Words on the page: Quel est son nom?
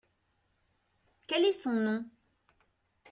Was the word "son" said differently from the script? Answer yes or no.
no